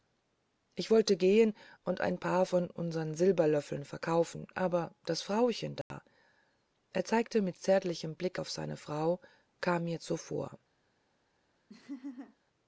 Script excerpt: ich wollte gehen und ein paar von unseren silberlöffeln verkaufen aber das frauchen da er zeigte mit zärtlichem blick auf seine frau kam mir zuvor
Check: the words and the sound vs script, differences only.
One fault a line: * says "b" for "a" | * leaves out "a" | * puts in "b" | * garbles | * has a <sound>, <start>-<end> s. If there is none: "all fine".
* has a dropout, 5.8-5.9 s
* has a laugh, 11.7-12.4 s